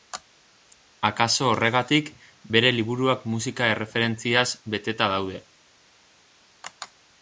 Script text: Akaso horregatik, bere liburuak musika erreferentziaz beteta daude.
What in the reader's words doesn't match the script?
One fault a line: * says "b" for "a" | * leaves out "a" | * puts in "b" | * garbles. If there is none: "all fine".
all fine